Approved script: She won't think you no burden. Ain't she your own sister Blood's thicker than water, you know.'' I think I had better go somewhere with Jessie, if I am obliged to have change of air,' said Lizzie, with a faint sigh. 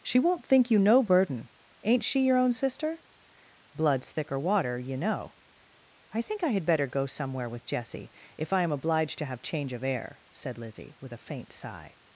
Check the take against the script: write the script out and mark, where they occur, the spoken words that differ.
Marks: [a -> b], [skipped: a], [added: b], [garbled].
She won't think you no burden. Ain't she your own sister Blood's thicker [skipped: than] water, you know.'' I think I had better go somewhere with Jessie, if I am obliged to have change of air,' said Lizzie, with a faint sigh.